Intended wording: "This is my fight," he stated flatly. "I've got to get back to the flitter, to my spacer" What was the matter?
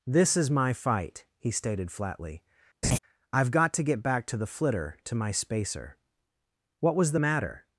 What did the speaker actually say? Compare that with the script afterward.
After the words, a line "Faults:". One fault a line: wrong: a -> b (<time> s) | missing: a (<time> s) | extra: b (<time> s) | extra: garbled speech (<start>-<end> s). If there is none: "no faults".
"This is my fight," he stated flatly. "I've got to get back to the flitter, to my spacer" What was the matter?
Faults:
no faults